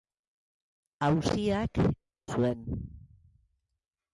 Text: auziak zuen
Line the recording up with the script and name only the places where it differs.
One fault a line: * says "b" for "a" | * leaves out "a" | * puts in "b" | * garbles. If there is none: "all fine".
all fine